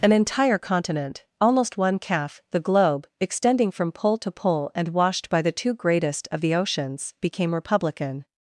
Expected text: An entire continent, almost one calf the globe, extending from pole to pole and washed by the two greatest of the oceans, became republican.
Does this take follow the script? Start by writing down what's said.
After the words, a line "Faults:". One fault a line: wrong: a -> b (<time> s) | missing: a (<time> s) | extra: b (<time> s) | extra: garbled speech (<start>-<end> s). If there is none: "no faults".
An entire continent, almost one calf the globe, extending from pole to pole and washed by the two greatest of the oceans, became republican.
Faults:
no faults